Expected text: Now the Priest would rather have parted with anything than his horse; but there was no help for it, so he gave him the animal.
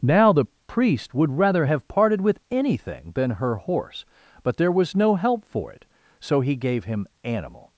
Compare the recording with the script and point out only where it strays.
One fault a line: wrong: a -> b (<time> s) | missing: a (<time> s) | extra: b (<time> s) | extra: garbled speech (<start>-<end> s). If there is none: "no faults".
wrong: his -> her (3.3 s)
missing: the (7.1 s)